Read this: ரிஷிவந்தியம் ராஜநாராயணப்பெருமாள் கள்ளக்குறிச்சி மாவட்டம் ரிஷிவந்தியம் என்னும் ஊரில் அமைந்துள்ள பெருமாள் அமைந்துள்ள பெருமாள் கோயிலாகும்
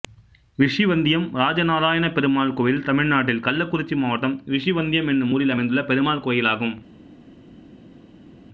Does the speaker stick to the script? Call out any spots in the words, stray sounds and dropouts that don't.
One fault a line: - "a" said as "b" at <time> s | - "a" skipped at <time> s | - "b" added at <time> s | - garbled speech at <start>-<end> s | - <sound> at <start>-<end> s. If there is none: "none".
- "கோயில் தமிழ்நாட்டில்" added at 2.5 s
- "அமைந்துள்ள பெருமாள்" skipped at 6.3 s